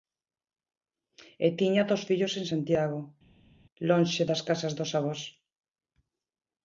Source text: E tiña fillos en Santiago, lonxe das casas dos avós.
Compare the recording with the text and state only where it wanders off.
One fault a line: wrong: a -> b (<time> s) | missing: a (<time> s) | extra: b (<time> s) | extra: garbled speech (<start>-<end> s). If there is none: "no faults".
extra: dous (1.9 s)